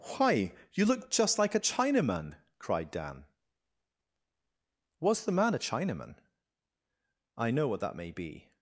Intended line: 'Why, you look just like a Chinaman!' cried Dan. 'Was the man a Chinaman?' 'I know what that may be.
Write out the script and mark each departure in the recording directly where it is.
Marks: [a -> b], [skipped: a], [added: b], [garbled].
'Why, you look just like a Chinaman!' cried Dan. 'Was the man a Chinaman?' 'I know what that may be.